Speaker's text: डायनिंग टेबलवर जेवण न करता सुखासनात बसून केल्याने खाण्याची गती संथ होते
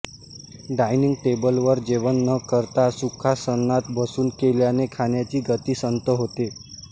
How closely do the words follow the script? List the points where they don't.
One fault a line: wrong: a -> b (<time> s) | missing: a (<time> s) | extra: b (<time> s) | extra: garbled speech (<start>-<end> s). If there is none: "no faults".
no faults